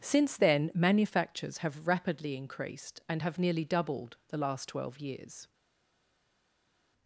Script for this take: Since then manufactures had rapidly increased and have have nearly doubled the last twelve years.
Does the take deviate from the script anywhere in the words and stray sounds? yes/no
yes